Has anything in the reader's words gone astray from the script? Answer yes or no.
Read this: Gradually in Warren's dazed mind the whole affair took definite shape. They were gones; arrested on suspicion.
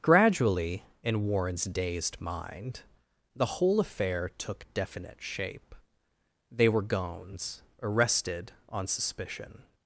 no